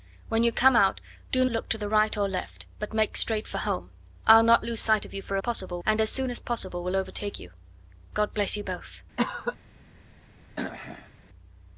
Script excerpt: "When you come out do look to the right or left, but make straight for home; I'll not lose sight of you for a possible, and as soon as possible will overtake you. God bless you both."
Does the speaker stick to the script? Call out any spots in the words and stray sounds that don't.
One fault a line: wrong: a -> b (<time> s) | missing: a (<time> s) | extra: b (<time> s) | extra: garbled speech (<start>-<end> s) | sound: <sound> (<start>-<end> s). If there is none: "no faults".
sound: cough (9.2-9.6 s)
sound: throat clearing (10.6-11.1 s)